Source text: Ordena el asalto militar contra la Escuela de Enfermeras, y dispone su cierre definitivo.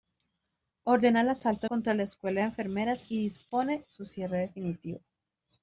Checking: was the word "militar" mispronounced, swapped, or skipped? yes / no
yes